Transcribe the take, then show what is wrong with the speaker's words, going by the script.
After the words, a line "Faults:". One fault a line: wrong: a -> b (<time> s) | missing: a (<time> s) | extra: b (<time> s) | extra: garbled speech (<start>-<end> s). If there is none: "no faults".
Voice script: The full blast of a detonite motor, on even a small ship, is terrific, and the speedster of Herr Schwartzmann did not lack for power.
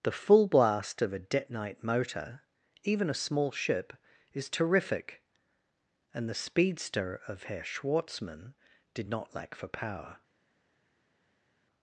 The full blast of a detonite motor, even a small ship, is terrific, and the speedster of Herr Schwartzmann did not lack for power.
Faults:
missing: on (2.4 s)